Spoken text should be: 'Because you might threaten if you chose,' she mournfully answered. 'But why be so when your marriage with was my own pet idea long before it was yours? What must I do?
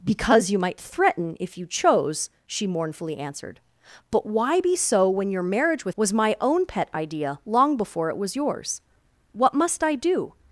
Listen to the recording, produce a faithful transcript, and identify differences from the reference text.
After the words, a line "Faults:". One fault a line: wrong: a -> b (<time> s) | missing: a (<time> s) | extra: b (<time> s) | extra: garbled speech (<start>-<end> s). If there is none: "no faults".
'Because you might threaten if you chose,' she mournfully answered. 'But why be so when your marriage with was my own pet idea long before it was yours? What must I do?
Faults:
no faults